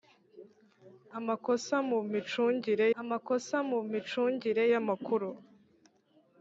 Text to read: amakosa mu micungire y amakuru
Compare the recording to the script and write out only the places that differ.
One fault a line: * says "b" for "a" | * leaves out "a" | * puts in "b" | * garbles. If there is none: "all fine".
* puts in "amakosa mu micungire"